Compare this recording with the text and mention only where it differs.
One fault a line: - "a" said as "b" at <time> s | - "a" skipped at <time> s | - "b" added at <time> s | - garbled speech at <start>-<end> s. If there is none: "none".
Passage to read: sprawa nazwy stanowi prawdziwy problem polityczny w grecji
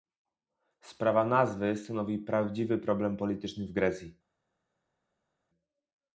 none